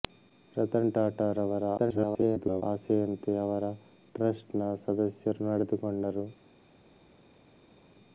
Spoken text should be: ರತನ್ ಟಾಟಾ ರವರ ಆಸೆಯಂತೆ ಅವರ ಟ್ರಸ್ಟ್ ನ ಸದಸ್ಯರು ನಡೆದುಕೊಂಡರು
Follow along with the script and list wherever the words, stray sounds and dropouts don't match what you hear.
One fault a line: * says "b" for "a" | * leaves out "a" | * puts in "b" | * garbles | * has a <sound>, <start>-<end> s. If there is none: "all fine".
* garbles